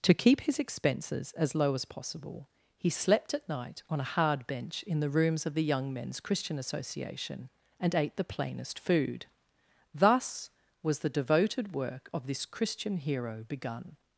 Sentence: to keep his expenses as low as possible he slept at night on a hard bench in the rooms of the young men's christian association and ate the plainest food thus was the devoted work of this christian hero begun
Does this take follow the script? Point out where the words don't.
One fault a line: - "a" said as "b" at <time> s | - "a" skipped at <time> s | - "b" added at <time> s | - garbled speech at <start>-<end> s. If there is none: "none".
none